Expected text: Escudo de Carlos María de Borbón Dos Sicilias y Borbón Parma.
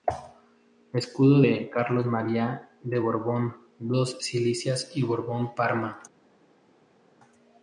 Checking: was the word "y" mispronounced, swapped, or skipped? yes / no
no